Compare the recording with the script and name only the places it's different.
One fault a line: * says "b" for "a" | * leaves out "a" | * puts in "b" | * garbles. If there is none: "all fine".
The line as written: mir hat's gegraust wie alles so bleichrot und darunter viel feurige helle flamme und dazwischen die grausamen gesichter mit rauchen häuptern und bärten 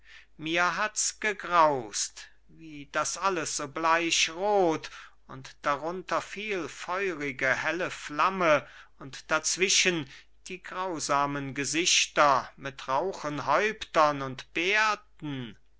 * puts in "das"